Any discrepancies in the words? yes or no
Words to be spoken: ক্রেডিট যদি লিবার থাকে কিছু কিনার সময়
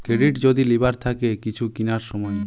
no